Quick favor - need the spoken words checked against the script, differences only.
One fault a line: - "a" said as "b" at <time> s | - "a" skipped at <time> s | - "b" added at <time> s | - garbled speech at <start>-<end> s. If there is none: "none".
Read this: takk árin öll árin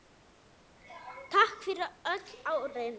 - "árin" said as "fyrir" at 1.6 s